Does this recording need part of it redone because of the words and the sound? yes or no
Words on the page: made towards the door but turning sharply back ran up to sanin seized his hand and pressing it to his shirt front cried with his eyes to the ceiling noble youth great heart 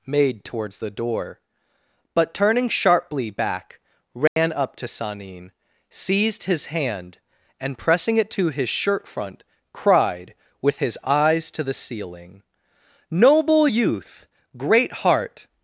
yes